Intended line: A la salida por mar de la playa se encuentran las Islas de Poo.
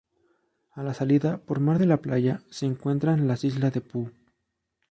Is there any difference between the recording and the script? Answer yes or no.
no